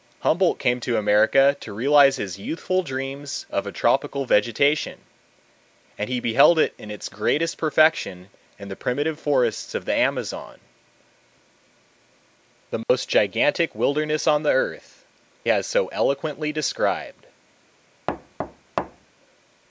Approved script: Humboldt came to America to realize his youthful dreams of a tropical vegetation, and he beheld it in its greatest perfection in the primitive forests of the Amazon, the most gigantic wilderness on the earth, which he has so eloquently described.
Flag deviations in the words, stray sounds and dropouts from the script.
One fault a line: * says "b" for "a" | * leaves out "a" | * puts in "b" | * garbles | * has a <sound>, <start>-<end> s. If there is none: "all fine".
* has a dropout, 12.8-12.9 s
* leaves out "which he"
* has a thud, 18.1-19.1 s